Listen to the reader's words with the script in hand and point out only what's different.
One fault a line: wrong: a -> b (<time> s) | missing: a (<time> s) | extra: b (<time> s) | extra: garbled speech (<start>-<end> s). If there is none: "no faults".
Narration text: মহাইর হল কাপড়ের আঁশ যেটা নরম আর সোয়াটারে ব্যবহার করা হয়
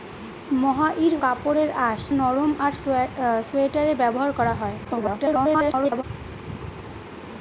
missing: হল (1.1 s)
missing: যেটা (2.0 s)
extra: garbled speech (4.8-6.0 s)